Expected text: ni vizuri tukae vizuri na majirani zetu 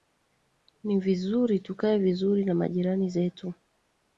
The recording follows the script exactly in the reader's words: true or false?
true